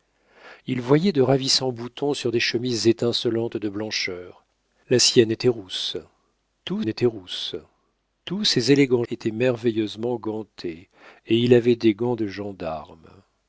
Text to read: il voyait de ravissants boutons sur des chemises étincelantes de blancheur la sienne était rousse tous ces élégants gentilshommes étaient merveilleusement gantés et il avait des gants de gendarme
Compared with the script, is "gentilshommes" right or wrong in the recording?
wrong